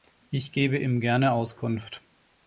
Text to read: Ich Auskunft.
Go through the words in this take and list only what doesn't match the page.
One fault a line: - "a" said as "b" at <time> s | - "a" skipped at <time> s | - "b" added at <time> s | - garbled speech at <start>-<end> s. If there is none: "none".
- "gebe ihm gerne" added at 0.5 s